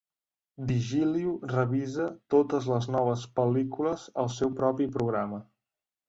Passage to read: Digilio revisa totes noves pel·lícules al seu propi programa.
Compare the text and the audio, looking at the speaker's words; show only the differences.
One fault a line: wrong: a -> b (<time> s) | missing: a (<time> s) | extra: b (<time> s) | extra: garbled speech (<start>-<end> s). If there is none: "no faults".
extra: les (2.7 s)